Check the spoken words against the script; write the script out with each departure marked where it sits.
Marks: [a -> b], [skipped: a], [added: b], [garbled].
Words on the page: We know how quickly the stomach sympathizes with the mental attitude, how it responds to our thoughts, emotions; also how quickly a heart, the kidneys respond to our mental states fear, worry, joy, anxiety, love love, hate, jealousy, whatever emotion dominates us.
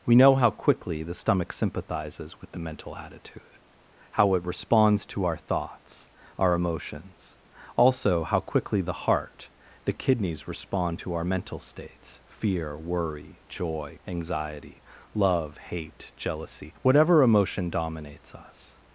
We know how quickly the stomach sympathizes with the mental attitude, how it responds to our thoughts, [added: our] emotions; also how quickly [a -> the] heart, the kidneys respond to our mental states fear, worry, joy, anxiety, love [skipped: love,] hate, jealousy, whatever emotion dominates us.